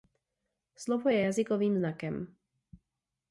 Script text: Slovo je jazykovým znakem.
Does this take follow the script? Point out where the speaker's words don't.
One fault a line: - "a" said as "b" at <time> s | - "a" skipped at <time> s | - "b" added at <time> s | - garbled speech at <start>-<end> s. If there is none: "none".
none